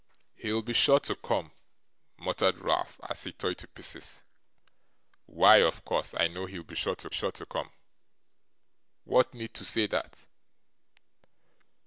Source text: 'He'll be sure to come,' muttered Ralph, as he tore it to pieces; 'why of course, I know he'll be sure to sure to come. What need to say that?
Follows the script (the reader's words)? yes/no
yes